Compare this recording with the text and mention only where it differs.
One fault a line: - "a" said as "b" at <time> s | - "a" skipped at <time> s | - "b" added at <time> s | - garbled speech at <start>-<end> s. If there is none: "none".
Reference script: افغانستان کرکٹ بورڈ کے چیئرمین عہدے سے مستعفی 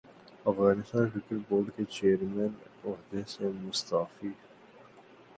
none